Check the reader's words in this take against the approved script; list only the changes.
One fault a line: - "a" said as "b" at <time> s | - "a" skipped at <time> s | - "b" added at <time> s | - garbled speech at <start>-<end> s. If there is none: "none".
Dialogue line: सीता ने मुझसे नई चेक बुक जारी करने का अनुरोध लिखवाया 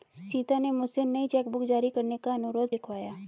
none